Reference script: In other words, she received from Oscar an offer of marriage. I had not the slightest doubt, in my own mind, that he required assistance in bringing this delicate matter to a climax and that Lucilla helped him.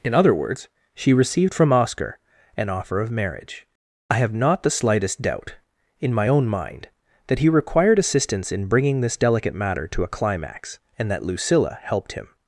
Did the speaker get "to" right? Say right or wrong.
right